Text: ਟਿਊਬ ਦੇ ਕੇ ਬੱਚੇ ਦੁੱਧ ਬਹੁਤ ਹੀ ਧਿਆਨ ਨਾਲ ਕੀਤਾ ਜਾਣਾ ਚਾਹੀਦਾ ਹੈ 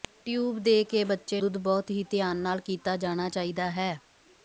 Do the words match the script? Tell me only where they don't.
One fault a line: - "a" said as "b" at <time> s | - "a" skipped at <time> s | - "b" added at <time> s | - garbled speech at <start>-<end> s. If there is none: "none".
none